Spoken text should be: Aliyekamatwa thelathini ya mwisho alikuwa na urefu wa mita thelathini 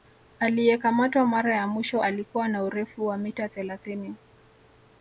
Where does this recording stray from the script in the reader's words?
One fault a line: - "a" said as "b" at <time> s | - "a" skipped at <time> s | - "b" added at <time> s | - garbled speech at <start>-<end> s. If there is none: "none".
- "thelathini" said as "mara" at 1.3 s